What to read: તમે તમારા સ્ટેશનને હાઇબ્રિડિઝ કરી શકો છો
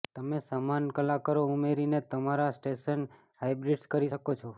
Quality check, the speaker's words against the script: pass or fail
fail